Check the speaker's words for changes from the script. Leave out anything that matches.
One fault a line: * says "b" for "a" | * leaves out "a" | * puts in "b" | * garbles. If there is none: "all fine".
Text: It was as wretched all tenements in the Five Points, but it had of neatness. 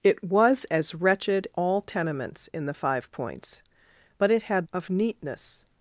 all fine